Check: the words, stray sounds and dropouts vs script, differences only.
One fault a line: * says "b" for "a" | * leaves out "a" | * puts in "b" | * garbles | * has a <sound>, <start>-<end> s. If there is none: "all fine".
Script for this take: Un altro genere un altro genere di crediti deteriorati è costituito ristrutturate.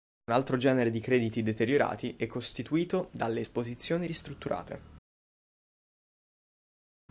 * leaves out "un altro genere"
* puts in "dalle esposizioni"